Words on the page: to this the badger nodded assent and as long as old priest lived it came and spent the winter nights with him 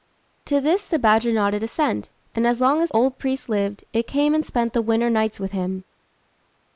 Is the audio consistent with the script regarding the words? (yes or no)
yes